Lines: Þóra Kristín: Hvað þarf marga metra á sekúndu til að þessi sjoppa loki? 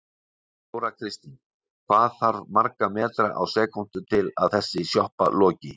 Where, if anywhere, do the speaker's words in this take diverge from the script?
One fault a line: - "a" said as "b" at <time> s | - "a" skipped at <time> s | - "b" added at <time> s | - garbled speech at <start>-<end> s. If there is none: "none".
none